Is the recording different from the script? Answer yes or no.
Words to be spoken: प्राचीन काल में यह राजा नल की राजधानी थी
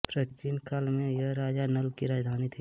no